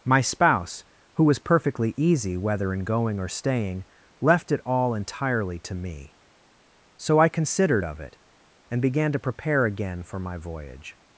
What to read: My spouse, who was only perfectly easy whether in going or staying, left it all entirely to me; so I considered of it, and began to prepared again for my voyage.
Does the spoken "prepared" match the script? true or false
false